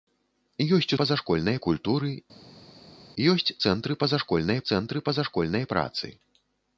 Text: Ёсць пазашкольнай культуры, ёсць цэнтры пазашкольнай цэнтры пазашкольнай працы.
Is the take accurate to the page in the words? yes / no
yes